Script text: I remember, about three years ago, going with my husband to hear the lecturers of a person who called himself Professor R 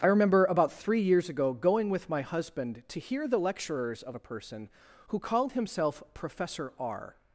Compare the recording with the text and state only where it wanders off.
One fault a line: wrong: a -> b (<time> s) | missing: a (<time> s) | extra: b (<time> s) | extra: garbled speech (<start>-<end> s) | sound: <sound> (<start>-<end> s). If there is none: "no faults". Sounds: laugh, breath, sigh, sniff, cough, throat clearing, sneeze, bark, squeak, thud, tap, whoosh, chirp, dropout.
no faults